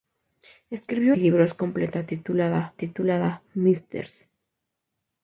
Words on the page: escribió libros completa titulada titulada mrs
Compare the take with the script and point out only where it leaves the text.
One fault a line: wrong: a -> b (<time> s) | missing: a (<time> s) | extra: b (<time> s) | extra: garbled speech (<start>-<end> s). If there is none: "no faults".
no faults